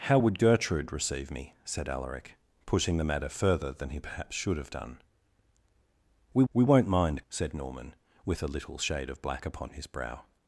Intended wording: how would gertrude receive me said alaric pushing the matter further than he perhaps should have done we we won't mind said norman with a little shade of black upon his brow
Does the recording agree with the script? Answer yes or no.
yes